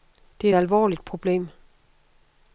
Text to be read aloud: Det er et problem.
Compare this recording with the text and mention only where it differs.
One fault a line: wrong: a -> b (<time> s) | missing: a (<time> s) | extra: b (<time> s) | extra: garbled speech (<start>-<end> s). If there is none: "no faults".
extra: alvorligt (0.6 s)